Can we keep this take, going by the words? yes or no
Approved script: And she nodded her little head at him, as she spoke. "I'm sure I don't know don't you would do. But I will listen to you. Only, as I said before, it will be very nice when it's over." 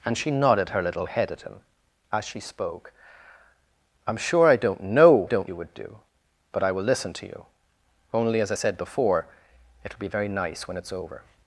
yes